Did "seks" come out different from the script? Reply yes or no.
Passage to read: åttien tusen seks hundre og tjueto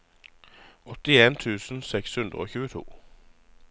no